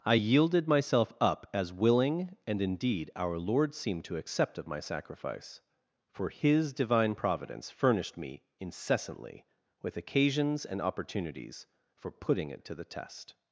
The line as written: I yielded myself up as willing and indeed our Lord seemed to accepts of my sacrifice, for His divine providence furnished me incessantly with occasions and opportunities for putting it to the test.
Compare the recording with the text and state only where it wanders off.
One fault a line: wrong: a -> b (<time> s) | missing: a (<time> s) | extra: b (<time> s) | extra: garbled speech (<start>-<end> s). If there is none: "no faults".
wrong: accepts -> accept (4.2 s)